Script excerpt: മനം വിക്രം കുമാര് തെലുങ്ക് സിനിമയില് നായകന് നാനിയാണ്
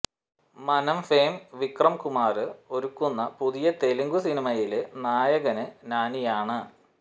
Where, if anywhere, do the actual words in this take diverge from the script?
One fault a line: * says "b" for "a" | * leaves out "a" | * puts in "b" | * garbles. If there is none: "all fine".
* puts in "ഫെയിം"
* puts in "ഒരുക്കുന്ന പുതിയ"